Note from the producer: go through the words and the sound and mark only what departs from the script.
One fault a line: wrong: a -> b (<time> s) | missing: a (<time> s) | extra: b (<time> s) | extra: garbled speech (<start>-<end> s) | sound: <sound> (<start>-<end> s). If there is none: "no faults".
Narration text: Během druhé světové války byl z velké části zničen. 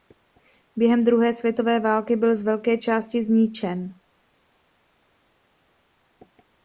no faults